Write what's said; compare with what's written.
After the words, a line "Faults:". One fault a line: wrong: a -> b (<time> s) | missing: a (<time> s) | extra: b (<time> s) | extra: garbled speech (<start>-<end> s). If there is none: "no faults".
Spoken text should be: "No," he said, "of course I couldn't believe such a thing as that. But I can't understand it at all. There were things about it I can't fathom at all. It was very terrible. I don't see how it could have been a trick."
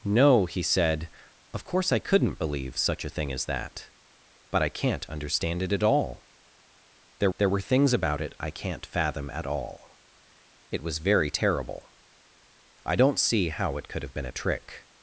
"No," he said, "of course I couldn't believe such a thing as that. But I can't understand it at all. There there were things about it I can't fathom at all. It was very terrible. I don't see how it could have been a trick."
Faults:
extra: there (7.4 s)